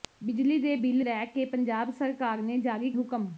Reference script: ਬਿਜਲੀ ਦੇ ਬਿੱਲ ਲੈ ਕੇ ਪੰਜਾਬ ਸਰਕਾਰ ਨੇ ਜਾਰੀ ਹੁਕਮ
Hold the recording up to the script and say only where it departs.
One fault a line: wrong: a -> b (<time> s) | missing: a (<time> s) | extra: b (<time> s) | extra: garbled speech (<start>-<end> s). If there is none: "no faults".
no faults